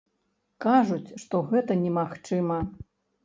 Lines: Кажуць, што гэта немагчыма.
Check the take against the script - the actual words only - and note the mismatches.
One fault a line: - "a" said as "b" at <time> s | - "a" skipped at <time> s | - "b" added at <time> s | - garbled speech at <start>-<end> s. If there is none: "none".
none